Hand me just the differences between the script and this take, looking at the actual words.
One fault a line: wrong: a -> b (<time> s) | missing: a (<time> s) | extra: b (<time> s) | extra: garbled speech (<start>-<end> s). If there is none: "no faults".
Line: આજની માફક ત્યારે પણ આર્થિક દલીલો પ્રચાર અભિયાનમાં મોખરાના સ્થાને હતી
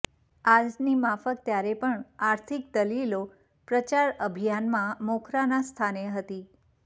no faults